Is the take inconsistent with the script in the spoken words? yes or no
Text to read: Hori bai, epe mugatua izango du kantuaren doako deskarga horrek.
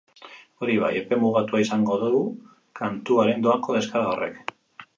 no